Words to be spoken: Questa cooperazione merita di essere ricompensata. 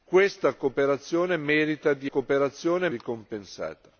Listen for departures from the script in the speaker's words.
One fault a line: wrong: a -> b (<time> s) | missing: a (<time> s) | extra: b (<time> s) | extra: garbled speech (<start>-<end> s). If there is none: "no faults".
wrong: essere -> cooperazione (2.1 s)